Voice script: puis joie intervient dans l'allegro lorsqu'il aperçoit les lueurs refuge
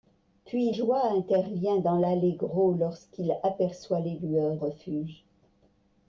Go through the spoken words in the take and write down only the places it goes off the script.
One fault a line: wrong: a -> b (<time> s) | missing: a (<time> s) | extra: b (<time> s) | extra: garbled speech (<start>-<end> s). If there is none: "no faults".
no faults